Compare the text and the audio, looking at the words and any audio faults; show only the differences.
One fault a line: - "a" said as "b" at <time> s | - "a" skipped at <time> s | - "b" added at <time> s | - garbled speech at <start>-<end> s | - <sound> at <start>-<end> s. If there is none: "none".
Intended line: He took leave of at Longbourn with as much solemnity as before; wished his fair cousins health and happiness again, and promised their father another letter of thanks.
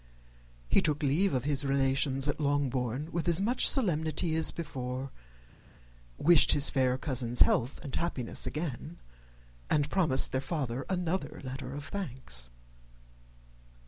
- "his relations" added at 1.4 s